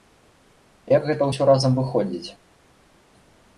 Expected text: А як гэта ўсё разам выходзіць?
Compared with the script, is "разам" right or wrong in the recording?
right